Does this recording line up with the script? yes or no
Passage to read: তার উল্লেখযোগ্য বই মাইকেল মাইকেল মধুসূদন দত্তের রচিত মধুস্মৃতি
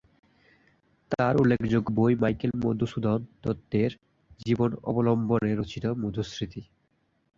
no